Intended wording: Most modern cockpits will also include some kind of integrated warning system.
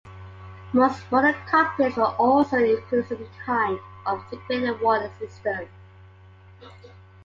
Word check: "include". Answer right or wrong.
right